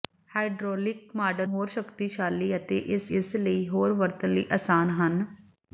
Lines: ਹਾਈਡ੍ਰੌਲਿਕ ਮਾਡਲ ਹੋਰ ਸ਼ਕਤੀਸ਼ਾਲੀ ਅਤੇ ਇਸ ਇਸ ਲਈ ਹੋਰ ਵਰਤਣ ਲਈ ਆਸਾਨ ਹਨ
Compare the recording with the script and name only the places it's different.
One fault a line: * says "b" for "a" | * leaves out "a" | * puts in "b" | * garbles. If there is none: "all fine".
all fine